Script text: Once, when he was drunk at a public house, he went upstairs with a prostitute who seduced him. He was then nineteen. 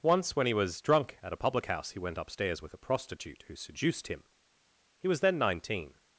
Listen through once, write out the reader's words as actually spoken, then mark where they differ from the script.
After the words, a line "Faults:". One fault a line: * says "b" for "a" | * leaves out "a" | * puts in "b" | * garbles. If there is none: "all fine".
Once, when he was drunk at a public house, he went upstairs with a prostitute who seduced him. He was then nineteen.
Faults:
all fine